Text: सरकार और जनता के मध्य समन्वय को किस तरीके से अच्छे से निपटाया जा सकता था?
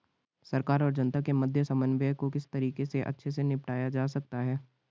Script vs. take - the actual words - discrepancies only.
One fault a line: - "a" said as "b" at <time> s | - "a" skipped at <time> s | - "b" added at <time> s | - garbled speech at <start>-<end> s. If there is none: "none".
- "था" said as "है" at 4.4 s